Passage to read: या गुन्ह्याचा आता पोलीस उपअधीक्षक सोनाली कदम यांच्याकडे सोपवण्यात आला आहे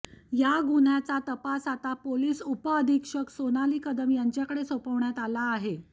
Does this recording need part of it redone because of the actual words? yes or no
yes